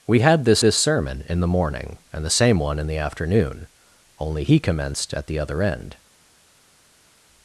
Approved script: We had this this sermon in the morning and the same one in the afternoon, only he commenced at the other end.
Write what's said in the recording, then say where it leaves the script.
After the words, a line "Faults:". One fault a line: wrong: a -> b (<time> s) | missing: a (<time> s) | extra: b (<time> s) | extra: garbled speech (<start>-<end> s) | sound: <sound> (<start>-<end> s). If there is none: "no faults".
We had this this sermon in the morning and the same one in the afternoon, only he commenced at the other end.
Faults:
no faults